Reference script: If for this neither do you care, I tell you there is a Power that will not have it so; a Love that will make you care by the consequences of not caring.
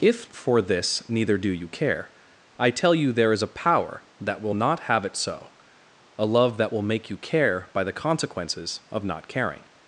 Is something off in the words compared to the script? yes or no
no